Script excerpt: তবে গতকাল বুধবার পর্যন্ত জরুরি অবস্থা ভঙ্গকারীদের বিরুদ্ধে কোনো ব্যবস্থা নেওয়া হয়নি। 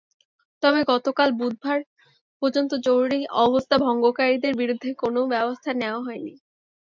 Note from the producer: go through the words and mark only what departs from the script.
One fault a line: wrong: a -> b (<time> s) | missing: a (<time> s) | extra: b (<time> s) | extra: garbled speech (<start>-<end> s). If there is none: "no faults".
no faults